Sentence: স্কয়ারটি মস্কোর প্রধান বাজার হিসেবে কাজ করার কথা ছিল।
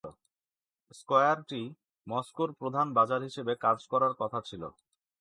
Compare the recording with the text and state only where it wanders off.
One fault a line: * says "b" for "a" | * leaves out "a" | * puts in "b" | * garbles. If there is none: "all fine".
all fine